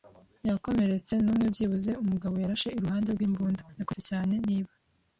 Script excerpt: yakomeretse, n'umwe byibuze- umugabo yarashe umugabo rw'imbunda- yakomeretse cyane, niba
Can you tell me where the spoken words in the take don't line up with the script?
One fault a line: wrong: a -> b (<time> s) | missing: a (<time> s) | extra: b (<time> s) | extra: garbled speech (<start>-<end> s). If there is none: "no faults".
wrong: umugabo -> iruhande (2.8 s)